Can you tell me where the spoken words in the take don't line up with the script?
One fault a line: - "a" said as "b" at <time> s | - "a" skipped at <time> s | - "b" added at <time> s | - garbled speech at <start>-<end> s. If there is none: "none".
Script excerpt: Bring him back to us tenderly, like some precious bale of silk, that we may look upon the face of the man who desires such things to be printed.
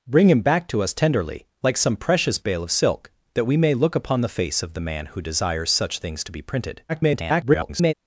- garbled speech at 6.9-7.9 s